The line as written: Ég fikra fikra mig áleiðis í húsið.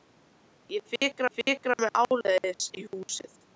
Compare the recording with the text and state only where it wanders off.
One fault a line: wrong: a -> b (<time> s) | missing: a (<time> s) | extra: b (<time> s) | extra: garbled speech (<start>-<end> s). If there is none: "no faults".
no faults